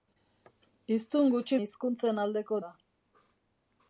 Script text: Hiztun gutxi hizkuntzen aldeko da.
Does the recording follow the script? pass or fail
pass